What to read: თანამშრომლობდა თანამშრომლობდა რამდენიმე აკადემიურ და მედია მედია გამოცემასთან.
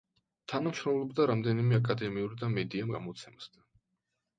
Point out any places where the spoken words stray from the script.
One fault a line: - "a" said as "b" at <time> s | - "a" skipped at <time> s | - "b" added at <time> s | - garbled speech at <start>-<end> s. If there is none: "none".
- "თანამშრომლობდა" skipped at 1.3 s
- "მედია" skipped at 2.9 s